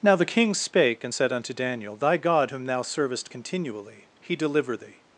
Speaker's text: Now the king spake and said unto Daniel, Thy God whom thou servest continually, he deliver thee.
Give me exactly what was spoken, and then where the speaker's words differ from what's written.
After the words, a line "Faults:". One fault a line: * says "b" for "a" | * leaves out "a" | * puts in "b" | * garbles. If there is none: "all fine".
Now the king spake and said unto Daniel, Thy God whom thou servest continually, he deliver thee.
Faults:
all fine